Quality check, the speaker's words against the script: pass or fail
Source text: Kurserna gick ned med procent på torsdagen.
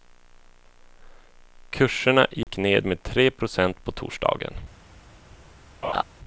fail